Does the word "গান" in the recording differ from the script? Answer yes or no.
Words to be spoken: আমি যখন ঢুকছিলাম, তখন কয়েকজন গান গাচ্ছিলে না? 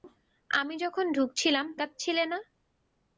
yes